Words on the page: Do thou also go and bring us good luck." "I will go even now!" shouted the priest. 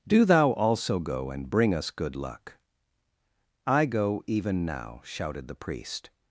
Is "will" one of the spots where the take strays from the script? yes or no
yes